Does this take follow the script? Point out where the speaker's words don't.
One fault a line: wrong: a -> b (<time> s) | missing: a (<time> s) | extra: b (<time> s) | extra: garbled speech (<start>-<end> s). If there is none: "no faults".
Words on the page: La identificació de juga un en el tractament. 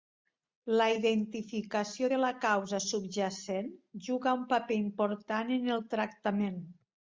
extra: la causa subjacent (2.2 s)
extra: paper important (4.5 s)